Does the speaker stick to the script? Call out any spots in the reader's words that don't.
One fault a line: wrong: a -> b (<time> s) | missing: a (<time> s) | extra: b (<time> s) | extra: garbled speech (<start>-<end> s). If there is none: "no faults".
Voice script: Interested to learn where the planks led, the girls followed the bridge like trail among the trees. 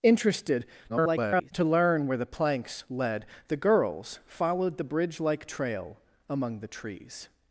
extra: garbled speech (0.9-1.5 s)